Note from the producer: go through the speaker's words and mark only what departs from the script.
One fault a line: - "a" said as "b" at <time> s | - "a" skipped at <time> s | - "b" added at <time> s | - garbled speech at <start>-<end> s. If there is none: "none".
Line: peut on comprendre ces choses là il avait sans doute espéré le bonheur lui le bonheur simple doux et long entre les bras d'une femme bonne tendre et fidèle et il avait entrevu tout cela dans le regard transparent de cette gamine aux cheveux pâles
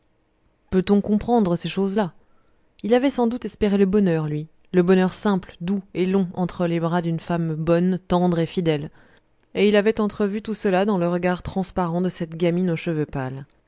none